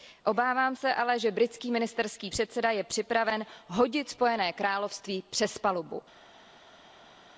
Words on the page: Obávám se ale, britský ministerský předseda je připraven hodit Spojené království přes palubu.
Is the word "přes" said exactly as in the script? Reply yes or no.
yes